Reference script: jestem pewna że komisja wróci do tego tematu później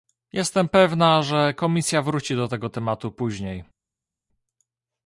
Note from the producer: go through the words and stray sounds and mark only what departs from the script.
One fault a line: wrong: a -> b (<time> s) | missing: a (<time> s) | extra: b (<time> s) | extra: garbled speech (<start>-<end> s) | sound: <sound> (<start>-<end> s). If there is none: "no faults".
no faults